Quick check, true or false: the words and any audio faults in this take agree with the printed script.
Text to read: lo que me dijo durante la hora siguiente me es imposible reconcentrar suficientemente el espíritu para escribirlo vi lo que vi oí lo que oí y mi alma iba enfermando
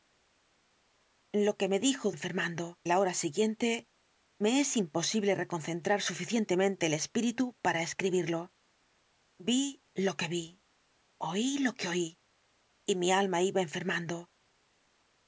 false